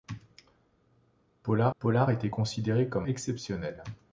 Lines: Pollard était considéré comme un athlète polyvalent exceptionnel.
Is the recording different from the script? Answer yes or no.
yes